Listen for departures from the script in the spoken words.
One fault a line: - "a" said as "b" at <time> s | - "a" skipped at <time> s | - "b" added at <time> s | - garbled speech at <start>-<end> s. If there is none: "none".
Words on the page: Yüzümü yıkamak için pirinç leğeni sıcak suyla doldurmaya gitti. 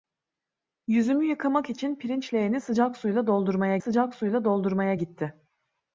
- "sıcak suyla doldurmaya" added at 3.8 s